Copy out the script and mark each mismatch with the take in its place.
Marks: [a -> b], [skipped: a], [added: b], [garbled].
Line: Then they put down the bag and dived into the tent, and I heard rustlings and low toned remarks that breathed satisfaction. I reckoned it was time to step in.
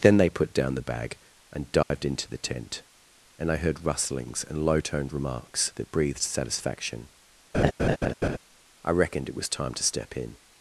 Then they put down the bag and dived into the tent, and I heard rustlings and low toned remarks that breathed satisfaction. I reckoned it was time to step in.